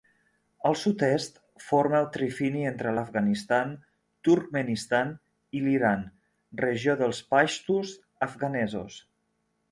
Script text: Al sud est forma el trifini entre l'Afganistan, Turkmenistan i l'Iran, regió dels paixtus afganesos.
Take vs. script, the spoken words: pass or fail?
pass